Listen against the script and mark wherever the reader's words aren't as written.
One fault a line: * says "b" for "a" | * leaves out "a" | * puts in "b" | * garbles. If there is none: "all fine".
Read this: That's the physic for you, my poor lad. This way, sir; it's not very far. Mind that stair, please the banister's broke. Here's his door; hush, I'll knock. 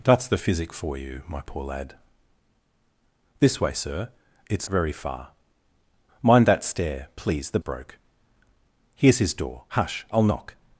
* leaves out "not"
* leaves out "banister's"